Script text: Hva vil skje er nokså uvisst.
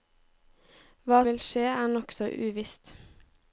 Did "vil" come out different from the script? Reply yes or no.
no